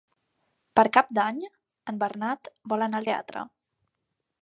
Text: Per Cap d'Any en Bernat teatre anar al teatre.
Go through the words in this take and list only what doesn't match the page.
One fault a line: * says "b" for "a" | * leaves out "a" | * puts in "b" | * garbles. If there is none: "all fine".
* says "vol" for "teatre"